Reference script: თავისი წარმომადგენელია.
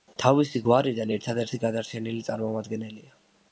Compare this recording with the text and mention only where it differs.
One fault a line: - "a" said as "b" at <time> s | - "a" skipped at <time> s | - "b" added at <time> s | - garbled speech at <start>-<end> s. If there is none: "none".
- "გვარიდან ერთადერთი გადარჩენილი" added at 0.7 s